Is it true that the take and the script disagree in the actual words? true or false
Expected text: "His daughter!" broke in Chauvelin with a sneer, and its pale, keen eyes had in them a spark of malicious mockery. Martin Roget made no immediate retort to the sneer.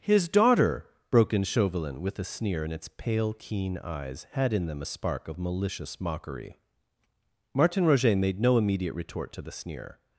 false